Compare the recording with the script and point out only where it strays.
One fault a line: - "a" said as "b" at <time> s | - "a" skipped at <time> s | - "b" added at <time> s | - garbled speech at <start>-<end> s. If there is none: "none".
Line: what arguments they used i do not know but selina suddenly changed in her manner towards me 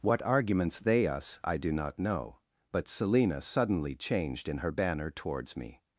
- "used" said as "us" at 1.1 s
- "manner" said as "banner" at 4.7 s